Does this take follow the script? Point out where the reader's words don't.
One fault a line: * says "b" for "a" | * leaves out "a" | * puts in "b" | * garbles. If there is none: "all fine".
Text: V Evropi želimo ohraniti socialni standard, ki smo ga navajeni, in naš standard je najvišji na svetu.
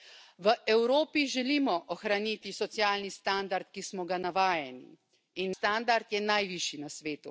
* leaves out "naš"